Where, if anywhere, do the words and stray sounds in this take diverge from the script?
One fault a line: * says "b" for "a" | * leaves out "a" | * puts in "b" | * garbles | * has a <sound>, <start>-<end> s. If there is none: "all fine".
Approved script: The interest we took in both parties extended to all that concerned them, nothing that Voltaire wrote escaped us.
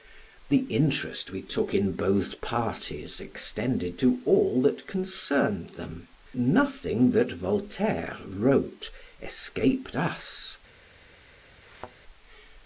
* has a thud, 11.6-12.0 s